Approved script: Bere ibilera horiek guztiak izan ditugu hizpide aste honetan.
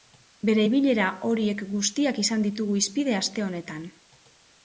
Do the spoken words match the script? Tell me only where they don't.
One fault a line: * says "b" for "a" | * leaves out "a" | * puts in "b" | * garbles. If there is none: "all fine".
all fine